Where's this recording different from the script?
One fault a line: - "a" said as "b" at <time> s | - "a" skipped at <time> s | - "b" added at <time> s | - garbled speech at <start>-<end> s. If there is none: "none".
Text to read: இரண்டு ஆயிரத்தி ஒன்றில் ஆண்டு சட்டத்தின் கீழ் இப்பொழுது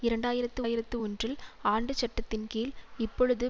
- "ஆயிரத்தி" added at 0.6 s